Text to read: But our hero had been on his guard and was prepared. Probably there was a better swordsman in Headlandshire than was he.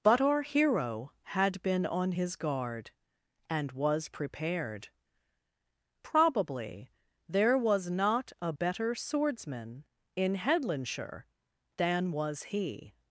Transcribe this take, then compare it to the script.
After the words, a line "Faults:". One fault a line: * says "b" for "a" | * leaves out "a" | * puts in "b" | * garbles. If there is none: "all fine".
But our hero had been on his guard and was prepared. Probably there was not a better swordsman in Headlandshire than was he.
Faults:
* puts in "not"